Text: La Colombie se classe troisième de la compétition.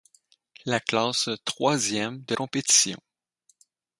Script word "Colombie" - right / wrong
wrong